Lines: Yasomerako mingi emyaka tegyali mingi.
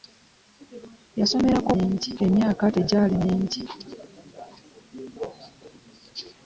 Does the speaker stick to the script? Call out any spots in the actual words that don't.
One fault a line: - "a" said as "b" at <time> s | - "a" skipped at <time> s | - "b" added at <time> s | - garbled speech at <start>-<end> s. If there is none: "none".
none